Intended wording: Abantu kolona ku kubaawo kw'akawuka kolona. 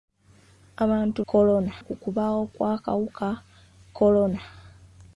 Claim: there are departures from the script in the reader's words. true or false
false